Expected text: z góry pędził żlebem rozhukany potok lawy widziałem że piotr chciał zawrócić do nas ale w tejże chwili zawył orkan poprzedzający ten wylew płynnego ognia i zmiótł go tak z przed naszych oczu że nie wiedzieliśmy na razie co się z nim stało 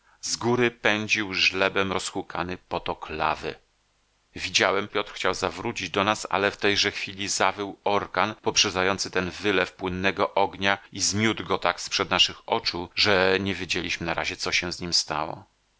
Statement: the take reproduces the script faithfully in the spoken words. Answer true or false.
false